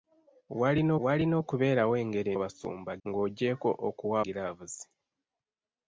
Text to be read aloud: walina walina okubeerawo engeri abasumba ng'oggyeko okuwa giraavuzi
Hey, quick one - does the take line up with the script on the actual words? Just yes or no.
yes